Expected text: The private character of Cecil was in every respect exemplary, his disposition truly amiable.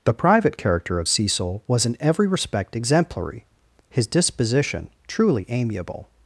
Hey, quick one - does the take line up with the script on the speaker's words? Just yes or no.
yes